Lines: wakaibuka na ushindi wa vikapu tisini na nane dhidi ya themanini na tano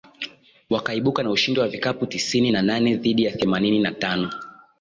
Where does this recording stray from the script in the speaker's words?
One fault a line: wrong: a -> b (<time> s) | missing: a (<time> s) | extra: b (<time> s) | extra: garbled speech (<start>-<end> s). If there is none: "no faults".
no faults